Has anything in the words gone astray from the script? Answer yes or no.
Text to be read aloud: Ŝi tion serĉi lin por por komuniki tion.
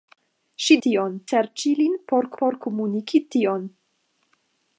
no